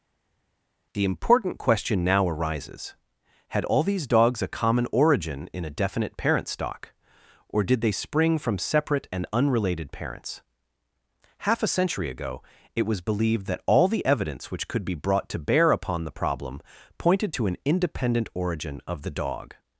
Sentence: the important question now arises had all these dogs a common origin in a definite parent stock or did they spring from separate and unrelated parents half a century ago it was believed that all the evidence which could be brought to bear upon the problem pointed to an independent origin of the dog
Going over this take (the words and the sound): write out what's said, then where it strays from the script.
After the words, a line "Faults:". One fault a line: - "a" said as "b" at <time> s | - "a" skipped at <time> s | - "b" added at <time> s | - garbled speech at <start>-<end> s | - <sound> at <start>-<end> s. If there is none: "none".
the important question now arises had all these dogs a common origin in a definite parent stock or did they spring from separate and unrelated parents half a century ago it was believed that all the evidence which could be brought to bear upon the problem pointed to an independent origin of the dog
Faults:
none